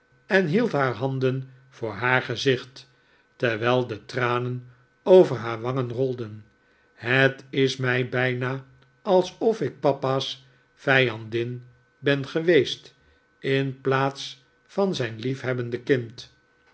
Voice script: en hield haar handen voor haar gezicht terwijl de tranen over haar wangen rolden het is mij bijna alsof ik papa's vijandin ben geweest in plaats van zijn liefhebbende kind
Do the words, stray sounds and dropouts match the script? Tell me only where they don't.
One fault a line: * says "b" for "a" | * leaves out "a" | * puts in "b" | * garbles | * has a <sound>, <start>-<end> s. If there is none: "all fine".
all fine